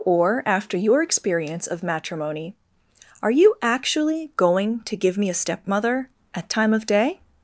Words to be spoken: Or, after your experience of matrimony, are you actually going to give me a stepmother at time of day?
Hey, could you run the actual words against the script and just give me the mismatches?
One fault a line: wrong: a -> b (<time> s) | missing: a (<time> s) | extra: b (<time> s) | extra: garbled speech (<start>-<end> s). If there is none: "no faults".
no faults